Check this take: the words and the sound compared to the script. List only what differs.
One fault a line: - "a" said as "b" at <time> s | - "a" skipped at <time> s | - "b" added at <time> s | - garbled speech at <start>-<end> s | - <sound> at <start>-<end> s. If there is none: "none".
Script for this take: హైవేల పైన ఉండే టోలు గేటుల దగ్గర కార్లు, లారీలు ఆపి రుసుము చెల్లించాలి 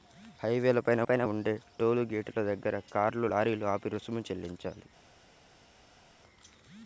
- "పైన" added at 1.0 s